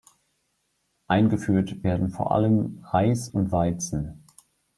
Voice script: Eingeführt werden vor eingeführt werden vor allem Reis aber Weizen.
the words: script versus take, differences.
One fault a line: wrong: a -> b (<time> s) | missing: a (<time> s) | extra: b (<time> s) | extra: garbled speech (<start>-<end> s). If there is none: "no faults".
missing: eingeführt werden vor (2.3 s)
wrong: aber -> und (3.3 s)